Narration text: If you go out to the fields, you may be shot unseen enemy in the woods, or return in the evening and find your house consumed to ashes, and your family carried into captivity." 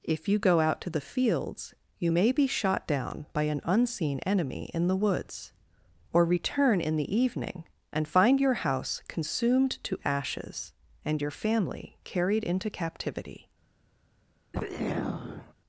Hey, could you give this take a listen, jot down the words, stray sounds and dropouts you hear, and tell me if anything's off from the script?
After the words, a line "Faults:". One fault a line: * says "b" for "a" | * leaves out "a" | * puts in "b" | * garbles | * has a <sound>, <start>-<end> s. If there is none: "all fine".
If you go out to the fields, you may be shot down by an unseen enemy in the woods, or return in the evening and find your house consumed to ashes, and your family carried into captivity."
Faults:
* puts in "down by an"
* has a throat clearing, 14.5-15.5 s